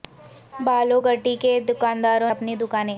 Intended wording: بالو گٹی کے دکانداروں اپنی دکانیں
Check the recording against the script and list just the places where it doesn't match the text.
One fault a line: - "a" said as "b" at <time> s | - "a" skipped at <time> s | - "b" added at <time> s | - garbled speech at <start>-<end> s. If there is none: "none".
none